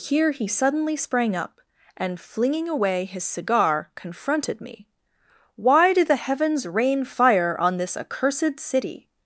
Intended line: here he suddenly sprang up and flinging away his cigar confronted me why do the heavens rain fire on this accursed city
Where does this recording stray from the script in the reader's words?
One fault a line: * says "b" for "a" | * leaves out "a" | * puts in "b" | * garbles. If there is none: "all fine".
all fine